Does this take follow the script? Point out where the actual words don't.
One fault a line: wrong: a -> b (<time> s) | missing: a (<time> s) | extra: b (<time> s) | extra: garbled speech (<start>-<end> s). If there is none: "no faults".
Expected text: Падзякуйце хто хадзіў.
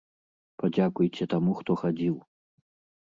extra: таму (1.3 s)